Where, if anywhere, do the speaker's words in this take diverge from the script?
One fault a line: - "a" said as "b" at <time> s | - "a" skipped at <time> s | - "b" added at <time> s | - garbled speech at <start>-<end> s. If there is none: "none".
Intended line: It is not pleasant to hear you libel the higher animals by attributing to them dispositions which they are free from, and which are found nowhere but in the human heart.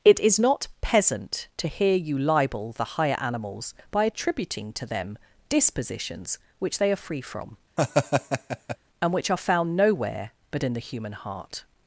- "pleasant" said as "peasant" at 0.8 s